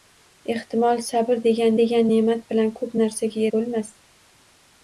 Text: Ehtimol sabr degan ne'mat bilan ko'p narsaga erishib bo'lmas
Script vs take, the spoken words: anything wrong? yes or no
yes